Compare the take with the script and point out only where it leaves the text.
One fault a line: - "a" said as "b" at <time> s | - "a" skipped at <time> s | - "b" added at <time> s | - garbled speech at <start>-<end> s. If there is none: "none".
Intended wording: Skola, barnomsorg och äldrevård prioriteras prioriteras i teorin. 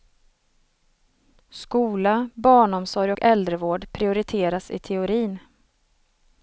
- "prioriteras" skipped at 4.7 s